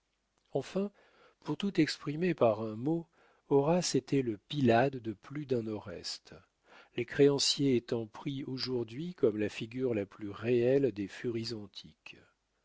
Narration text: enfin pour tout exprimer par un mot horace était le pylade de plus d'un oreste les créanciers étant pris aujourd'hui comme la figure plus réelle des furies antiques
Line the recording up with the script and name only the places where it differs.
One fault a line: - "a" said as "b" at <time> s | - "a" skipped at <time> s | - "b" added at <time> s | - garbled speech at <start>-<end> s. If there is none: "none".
- "la" added at 9.9 s